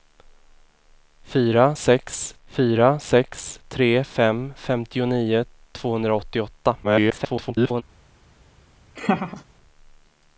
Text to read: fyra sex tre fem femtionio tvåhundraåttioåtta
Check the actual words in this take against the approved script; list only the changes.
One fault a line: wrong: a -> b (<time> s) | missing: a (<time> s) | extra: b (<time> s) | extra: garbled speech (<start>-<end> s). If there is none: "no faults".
extra: fyra sex (2.5 s)
extra: garbled speech (6.8-7.8 s)